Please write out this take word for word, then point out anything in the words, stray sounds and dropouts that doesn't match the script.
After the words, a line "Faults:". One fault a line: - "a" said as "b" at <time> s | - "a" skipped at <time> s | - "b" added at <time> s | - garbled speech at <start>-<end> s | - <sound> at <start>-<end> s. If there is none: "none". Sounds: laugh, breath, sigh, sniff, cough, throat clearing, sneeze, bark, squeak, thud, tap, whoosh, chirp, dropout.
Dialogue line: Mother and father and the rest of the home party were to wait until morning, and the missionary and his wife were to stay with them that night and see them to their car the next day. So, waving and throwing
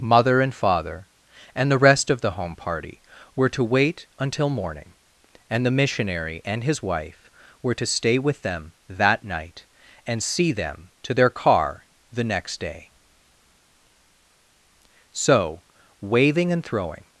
Mother and father and the rest of the home party were to wait until morning, and the missionary and his wife were to stay with them that night and see them to their car the next day. So, waving and throwing
Faults:
none